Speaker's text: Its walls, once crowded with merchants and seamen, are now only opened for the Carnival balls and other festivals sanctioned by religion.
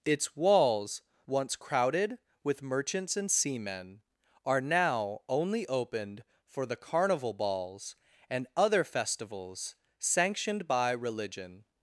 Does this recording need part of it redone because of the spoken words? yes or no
no